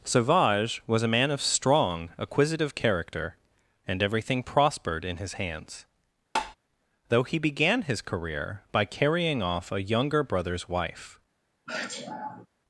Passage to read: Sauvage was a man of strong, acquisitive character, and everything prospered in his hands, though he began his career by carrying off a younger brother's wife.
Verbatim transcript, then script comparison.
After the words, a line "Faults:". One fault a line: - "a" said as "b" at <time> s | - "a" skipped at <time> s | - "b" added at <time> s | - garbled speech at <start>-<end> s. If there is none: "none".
Sauvage was a man of strong, acquisitive character, and everything prospered in his hands, though he began his career by carrying off a younger brother's wife.
Faults:
none